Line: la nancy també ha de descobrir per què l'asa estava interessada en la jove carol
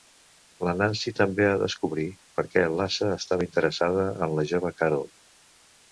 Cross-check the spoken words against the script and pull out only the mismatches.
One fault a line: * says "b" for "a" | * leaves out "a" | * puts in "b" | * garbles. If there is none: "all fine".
all fine